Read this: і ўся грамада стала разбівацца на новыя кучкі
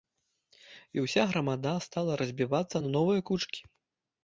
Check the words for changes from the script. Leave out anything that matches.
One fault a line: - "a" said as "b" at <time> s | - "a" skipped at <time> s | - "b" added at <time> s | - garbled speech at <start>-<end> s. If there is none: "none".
none